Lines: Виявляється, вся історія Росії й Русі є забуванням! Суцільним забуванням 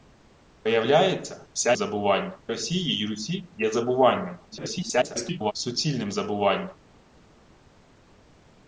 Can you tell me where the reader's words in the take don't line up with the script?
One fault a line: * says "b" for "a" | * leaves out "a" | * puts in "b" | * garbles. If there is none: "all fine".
* says "забуванням" for "історія"
* garbles